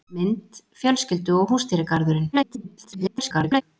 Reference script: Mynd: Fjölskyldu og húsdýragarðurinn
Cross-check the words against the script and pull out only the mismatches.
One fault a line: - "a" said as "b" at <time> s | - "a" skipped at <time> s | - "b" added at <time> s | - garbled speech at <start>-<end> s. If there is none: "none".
- garbled speech at 2.3-3.6 s